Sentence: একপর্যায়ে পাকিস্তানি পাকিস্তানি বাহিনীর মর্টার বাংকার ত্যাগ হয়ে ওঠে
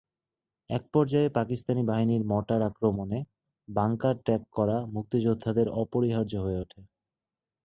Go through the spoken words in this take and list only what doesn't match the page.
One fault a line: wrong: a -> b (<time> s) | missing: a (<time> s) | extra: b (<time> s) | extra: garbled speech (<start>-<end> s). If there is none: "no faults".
missing: পাকিস্তানি (1.8 s)
extra: আক্রমণে (2.6 s)
extra: করা মুক্তিযোদ্ধাদের অপরিহার্য (4.5 s)